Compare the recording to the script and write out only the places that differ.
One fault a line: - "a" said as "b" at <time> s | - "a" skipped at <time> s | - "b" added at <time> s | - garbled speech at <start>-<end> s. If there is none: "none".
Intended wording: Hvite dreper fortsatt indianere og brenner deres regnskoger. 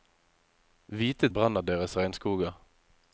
- "dreper fortsatt indianere" skipped at 1.3 s